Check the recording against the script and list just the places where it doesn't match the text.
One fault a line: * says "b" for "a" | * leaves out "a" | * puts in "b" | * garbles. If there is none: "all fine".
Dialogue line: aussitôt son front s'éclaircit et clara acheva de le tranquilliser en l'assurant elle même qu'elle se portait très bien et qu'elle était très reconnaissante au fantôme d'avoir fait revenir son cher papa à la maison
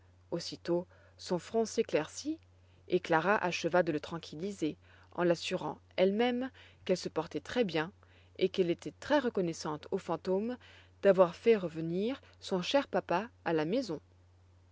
all fine